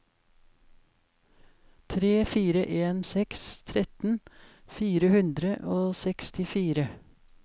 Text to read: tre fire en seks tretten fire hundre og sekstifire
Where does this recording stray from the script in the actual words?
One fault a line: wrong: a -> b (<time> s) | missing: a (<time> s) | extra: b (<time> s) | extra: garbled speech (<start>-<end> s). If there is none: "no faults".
no faults